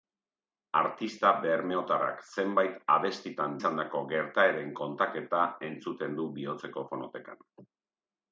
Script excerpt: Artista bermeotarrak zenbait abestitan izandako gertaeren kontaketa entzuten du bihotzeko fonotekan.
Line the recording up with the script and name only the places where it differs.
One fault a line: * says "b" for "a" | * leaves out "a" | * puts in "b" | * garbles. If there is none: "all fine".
all fine